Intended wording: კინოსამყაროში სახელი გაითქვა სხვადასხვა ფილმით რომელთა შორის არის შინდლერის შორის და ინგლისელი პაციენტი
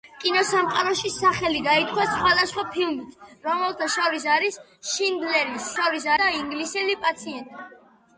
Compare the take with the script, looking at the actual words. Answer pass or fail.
pass